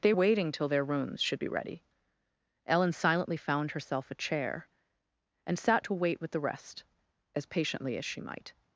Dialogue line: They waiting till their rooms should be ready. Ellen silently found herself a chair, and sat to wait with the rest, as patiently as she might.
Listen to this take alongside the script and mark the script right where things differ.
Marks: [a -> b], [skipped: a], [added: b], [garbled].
They waiting till their rooms should be ready. Ellen silently found herself a chair, and sat to wait with the rest, as patiently as she might.